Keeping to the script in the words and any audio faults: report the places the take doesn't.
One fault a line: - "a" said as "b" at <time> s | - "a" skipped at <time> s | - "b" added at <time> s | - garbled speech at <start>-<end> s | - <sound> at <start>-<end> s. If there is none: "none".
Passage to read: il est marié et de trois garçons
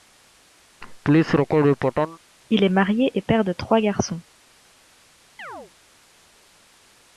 - laugh at 0.8-2.2 s
- "père" added at 3.2 s
- chirp at 5.4-5.7 s